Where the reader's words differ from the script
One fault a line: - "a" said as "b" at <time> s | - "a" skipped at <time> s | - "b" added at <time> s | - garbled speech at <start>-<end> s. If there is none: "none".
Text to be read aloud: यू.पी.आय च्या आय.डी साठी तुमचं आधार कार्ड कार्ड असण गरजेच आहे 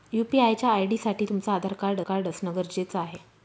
none